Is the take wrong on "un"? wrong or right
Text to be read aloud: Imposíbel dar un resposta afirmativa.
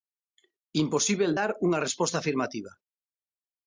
wrong